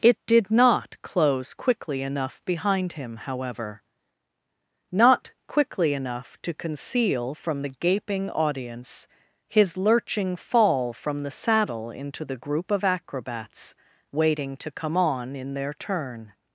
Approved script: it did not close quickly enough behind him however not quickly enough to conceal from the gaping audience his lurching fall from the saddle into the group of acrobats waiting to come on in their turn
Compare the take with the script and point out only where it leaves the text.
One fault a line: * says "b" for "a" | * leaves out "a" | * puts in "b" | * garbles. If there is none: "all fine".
all fine